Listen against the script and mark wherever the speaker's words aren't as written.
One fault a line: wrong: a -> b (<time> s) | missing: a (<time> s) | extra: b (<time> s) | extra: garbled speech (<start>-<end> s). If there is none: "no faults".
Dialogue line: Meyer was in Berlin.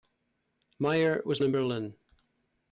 no faults